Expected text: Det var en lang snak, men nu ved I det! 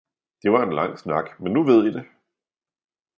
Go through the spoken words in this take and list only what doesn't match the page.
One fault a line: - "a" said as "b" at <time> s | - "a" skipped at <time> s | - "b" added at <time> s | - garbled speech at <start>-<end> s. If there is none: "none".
none